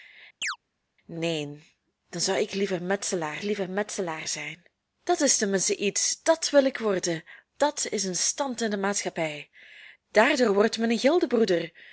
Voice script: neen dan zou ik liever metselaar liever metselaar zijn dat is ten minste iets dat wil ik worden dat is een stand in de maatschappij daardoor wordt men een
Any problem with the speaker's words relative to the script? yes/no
no